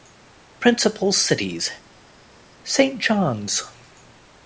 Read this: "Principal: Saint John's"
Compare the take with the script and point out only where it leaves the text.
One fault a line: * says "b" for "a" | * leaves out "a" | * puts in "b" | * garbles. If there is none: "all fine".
* puts in "cities"